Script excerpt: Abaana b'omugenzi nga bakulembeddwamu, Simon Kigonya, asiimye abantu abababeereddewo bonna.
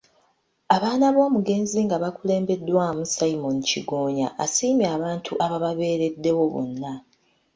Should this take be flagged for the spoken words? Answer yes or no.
no